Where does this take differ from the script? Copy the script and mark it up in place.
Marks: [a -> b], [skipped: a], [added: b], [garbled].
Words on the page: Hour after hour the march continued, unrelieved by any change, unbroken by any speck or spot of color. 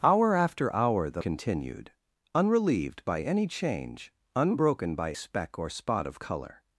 Hour after hour the [skipped: march] continued, unrelieved by any change, unbroken by [skipped: any] speck or spot of color.